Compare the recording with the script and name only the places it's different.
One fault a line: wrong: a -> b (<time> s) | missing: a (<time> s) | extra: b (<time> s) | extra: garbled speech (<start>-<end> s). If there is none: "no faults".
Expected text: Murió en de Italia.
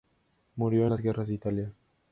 extra: las guerras (0.9 s)